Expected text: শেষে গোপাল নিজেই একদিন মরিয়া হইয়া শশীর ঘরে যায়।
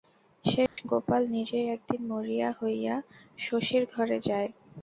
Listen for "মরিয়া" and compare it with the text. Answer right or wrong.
right